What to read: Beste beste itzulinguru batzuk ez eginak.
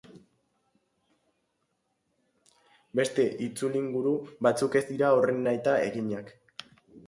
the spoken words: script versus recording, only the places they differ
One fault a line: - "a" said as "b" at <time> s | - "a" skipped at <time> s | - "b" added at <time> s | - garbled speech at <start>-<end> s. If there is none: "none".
- "beste" skipped at 3.3 s
- "dira horren nahita" added at 4.9 s